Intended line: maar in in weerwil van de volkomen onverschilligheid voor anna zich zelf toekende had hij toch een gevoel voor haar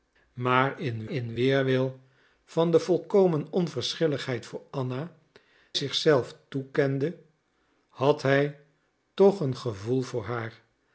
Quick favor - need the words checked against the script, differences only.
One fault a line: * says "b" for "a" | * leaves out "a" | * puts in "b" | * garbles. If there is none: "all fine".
all fine